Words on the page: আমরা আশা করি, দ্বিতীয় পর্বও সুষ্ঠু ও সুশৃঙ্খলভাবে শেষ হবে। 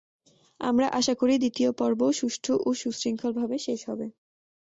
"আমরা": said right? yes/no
yes